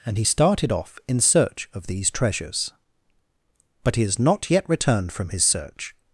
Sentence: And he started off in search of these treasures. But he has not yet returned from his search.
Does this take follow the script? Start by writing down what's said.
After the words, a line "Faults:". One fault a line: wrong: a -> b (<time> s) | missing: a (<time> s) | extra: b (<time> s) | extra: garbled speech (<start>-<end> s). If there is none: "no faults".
And he started off in search of these treasures. But he has not yet returned from his search.
Faults:
no faults